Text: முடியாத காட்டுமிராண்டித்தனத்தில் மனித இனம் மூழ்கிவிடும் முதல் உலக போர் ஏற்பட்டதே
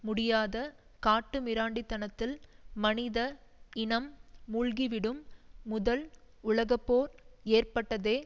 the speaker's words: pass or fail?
pass